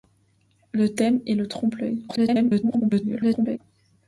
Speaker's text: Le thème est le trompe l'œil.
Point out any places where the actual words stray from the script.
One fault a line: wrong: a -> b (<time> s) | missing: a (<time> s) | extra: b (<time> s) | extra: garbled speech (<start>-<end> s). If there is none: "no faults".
extra: garbled speech (2.1-3.6 s)